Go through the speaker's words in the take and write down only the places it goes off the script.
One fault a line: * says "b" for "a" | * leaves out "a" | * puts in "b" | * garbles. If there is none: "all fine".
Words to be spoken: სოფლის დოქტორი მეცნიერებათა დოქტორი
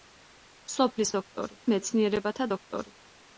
all fine